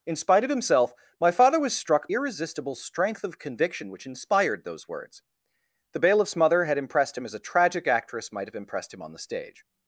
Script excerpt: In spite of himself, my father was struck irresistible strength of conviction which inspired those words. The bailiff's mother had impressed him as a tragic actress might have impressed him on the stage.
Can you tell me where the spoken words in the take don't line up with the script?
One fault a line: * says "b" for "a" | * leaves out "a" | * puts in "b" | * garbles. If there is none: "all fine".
all fine